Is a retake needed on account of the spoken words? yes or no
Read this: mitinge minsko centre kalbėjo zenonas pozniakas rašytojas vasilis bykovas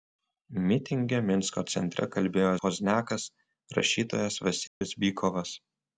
yes